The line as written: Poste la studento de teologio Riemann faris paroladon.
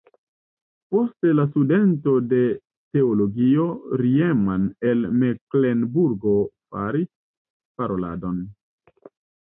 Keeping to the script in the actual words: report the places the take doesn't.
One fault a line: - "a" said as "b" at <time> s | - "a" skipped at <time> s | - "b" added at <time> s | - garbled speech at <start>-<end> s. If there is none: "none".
- "el Meklenburgo" added at 4.9 s